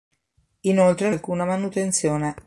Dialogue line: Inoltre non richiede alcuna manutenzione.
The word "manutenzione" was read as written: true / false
true